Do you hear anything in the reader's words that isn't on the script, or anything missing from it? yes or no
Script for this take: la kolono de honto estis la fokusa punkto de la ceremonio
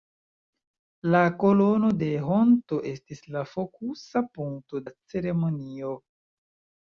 yes